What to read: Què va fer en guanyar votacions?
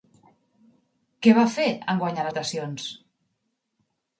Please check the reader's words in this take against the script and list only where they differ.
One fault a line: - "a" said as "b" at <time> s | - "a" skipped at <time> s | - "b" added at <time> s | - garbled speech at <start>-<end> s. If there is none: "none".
none